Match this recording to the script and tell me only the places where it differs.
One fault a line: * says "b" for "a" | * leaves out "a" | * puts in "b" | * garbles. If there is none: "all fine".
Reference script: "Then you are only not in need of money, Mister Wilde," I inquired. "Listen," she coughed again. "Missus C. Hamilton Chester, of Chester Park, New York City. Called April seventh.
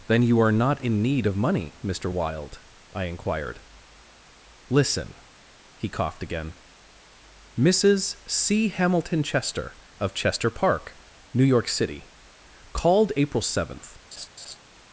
* leaves out "only"
* says "he" for "she"